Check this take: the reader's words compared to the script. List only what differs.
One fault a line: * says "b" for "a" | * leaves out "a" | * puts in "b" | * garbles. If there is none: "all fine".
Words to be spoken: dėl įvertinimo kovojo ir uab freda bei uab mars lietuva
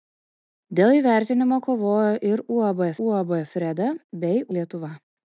* puts in "uab"
* leaves out "uab mars"